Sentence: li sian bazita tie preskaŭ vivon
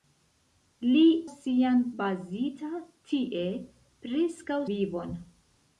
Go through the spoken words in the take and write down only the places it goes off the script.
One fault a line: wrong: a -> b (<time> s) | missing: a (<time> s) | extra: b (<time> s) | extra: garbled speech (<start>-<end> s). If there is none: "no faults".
no faults